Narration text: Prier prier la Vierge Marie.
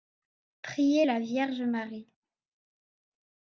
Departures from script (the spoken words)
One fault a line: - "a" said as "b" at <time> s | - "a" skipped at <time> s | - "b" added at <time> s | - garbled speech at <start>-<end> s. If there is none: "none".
- "prier" skipped at 1.1 s